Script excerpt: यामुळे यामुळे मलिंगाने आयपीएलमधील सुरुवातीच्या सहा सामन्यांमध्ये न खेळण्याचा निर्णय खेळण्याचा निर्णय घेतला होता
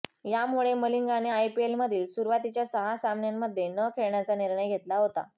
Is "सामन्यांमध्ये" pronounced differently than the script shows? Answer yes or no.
no